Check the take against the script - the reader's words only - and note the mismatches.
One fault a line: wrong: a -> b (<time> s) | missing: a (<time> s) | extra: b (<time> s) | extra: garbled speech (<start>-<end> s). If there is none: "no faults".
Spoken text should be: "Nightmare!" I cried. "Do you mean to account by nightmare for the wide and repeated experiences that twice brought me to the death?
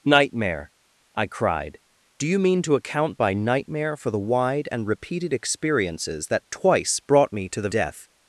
no faults